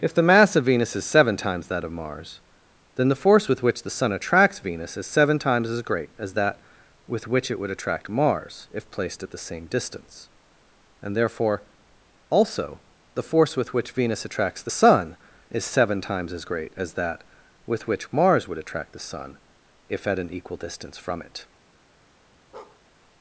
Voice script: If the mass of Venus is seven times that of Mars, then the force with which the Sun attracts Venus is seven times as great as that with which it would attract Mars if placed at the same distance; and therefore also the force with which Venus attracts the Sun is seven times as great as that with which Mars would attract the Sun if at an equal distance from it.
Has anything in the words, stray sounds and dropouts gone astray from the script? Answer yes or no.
yes